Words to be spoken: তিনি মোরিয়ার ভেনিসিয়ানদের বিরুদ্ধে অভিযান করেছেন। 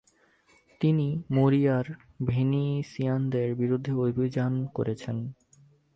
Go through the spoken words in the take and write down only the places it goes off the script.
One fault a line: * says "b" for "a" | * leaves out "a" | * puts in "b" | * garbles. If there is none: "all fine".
all fine